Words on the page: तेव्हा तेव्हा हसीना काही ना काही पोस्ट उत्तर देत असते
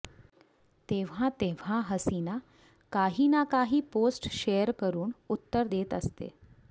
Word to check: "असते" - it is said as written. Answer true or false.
true